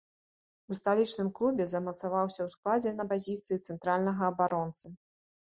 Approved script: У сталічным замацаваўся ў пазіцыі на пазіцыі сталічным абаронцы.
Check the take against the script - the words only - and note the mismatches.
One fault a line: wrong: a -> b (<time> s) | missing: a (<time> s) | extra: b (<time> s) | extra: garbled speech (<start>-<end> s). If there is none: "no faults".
extra: клубе (1.4 s)
wrong: пазіцыі -> складзе (2.6 s)
wrong: сталічным -> цэнтральнага (3.7 s)